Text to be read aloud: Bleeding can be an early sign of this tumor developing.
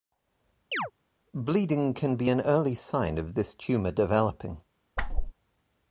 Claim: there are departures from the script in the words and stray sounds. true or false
true